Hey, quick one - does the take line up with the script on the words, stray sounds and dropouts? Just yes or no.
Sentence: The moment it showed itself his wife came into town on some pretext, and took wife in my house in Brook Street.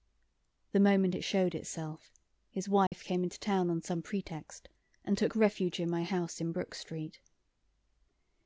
no